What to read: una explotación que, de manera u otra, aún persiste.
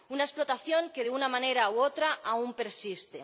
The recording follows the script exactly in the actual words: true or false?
false